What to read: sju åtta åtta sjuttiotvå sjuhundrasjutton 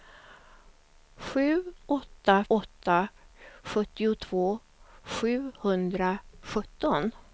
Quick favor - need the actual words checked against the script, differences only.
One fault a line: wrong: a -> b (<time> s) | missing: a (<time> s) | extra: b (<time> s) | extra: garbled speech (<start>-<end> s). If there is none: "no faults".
no faults